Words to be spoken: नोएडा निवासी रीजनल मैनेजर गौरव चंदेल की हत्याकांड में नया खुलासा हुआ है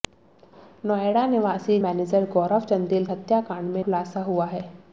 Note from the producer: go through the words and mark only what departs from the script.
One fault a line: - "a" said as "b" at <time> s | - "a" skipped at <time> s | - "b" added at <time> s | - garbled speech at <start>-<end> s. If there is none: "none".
- "रीजनल" skipped at 1.8 s
- "की" skipped at 3.0 s
- "नया" skipped at 3.8 s